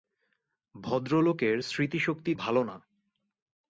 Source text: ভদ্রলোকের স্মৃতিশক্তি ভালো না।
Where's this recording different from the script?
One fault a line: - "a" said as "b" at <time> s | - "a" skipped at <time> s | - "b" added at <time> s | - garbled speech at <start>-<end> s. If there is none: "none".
none